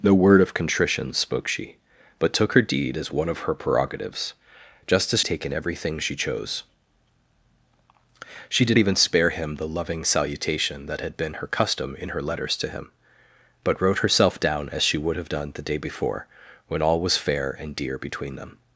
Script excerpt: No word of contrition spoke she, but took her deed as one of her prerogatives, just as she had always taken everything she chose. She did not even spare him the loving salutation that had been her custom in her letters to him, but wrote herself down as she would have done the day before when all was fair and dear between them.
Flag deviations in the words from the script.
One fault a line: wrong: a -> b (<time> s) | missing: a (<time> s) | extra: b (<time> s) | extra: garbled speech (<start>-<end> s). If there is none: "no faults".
missing: she had always (5.2 s)
missing: not (8.8 s)